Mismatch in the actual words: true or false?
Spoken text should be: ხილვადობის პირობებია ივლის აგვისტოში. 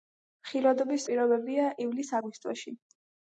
false